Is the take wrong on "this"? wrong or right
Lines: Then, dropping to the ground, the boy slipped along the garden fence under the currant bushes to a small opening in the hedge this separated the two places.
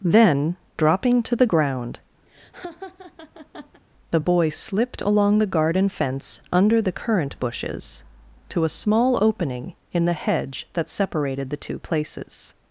wrong